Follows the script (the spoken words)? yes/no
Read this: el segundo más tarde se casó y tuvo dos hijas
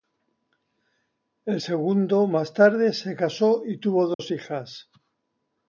yes